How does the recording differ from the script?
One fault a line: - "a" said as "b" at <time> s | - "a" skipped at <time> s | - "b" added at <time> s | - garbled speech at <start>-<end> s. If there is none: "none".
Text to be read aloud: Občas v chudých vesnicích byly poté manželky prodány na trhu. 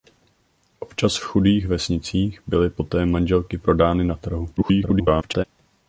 - garbled speech at 4.6-5.4 s